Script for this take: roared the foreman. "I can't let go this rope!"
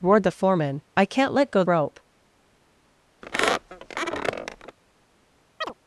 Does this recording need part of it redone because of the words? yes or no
yes